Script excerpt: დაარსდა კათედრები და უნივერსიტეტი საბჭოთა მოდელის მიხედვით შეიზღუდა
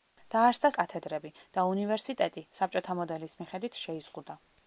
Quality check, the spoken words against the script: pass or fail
pass